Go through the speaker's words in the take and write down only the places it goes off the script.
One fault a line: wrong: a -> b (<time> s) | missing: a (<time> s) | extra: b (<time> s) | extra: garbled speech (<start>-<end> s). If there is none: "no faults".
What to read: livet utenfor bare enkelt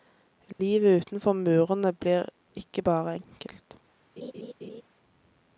extra: murene blir ikke (1.3 s)